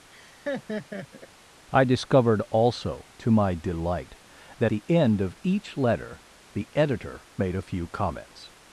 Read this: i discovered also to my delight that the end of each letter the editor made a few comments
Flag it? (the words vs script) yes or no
no